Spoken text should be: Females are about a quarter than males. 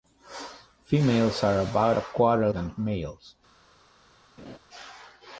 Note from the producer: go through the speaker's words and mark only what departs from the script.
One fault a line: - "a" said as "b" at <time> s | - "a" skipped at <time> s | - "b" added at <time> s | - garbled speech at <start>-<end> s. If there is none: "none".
none